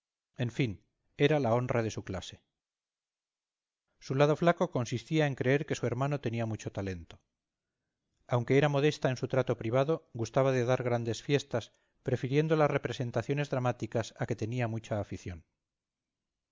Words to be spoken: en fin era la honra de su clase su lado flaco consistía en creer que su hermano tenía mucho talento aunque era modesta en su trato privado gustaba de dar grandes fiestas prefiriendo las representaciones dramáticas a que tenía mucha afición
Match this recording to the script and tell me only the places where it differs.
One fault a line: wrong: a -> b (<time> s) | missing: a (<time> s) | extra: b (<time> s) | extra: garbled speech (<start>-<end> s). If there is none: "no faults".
no faults